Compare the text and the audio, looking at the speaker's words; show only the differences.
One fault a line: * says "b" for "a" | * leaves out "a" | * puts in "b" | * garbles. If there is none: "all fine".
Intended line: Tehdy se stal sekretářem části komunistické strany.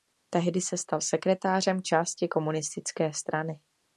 all fine